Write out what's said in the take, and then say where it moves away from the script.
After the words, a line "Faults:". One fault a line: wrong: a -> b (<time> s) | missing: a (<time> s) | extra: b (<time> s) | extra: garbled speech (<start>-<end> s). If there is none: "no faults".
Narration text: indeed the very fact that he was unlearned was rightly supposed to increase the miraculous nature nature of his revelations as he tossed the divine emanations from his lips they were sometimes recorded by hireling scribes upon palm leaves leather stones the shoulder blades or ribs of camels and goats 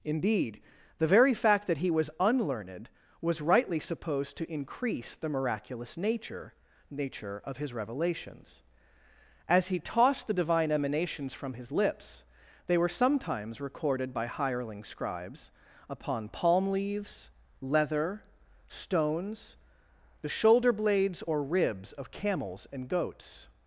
indeed the very fact that he was unlearned was rightly supposed to increase the miraculous nature nature of his revelations as he tossed the divine emanations from his lips they were sometimes recorded by hireling scribes upon palm leaves leather stones the shoulder blades or ribs of camels and goats
Faults:
no faults